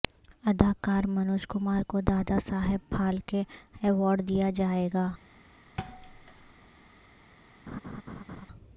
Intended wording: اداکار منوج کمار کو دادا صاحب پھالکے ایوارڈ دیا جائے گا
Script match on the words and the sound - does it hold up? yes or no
no